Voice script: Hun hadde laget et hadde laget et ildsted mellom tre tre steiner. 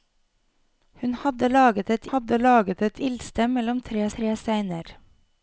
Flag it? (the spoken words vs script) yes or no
no